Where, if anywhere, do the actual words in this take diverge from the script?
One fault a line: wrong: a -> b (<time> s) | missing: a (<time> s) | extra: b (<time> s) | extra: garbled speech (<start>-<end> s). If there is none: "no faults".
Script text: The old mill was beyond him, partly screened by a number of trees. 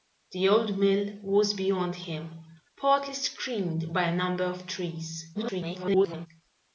extra: garbled speech (5.3-6.3 s)